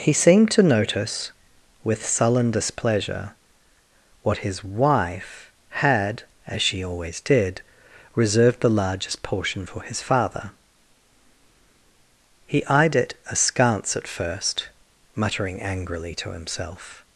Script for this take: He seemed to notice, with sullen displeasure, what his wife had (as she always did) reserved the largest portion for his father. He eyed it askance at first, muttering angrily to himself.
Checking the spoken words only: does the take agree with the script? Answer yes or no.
yes